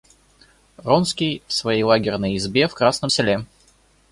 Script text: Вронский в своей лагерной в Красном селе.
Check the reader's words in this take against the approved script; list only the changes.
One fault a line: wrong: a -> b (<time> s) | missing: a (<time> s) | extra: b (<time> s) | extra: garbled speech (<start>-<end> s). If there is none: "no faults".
extra: избе (2.4 s)